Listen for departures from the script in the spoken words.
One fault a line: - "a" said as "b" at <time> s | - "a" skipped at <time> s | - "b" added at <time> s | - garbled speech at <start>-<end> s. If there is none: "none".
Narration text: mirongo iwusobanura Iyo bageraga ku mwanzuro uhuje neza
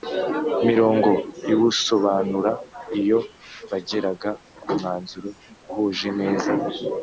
none